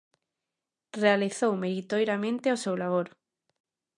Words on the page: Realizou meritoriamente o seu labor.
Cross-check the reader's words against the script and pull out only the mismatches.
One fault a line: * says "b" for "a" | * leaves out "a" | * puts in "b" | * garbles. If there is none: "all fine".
all fine